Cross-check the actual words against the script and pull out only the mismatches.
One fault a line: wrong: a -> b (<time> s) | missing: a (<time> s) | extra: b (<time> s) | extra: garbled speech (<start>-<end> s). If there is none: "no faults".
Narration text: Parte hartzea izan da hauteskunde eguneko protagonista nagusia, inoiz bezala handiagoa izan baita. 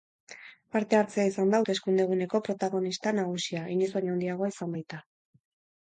wrong: bezala -> baino (4.0 s)